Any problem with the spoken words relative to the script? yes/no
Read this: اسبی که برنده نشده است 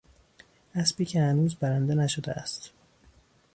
yes